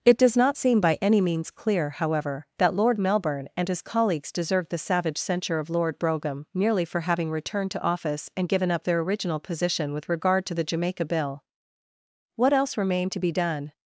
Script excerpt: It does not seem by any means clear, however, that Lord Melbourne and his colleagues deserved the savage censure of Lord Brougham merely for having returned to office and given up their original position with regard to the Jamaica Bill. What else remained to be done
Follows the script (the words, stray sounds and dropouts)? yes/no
yes